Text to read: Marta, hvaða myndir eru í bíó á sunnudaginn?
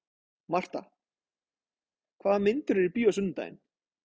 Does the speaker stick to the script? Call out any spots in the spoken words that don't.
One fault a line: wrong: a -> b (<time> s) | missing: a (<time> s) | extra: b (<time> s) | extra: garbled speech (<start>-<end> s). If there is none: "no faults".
no faults